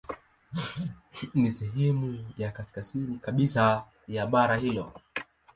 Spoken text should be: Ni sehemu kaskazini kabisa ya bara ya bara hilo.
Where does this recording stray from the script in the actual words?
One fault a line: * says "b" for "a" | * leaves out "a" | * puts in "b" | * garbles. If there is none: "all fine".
* puts in "ya"
* leaves out "ya bara"